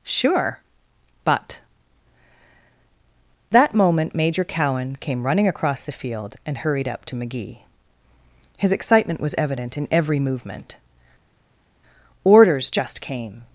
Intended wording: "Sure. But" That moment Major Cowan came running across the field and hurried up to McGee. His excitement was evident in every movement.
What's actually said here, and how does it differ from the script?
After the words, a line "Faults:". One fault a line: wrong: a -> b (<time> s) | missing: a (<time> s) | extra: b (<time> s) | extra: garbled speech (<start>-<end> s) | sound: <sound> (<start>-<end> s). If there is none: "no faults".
"Sure. But" That moment Major Cowan came running across the field and hurried up to McGee. His excitement was evident in every movement. "Orders just came
Faults:
extra: Orders just came (12.2 s)